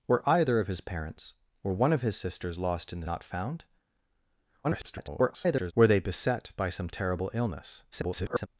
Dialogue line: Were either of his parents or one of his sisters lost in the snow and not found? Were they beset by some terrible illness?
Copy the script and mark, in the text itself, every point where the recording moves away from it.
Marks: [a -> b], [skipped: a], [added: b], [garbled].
Were either of his parents or one of his sisters lost in the [skipped: snow and] not found? [garbled] Were they beset by some terrible illness? [garbled]